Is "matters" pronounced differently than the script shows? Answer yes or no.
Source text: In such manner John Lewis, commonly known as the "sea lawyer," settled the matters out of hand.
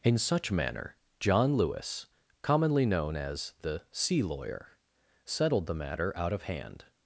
yes